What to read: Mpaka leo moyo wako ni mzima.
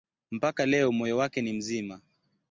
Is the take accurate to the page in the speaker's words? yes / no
no